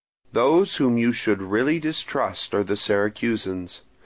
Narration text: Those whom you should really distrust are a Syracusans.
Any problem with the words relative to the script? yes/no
yes